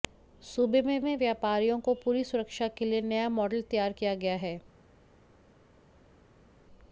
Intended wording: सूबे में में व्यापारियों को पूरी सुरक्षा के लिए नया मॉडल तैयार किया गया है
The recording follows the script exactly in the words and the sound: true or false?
true